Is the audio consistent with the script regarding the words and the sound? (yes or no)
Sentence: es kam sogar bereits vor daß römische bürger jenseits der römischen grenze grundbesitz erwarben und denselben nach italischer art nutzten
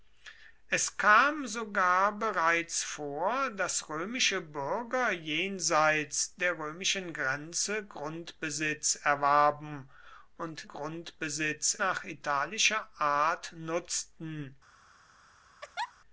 no